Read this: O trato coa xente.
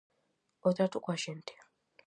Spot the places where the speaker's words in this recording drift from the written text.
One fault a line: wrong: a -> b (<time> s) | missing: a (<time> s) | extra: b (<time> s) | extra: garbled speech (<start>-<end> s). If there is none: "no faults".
no faults